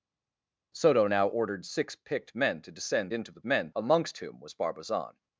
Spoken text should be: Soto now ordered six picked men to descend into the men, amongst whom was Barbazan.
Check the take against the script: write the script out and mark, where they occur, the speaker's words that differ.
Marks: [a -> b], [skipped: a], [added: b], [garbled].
Soto now ordered six picked men to descend into the men, amongst whom was Barbazan.